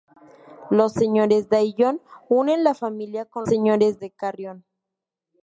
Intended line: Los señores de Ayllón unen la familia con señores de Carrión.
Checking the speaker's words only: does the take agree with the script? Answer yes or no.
yes